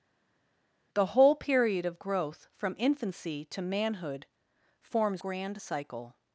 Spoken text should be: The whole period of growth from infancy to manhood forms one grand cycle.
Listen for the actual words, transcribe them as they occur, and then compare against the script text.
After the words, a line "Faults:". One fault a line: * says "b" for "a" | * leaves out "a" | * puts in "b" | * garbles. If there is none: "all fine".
The whole period of growth from infancy to manhood forms grand cycle.
Faults:
* leaves out "one"